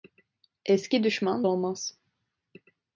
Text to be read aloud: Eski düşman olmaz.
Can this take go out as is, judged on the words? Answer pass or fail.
pass